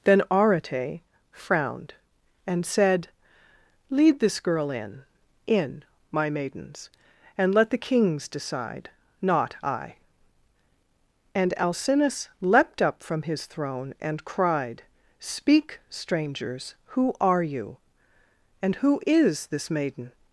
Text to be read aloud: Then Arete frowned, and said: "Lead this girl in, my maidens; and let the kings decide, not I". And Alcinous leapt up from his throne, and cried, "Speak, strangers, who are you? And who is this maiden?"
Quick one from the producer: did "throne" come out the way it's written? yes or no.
yes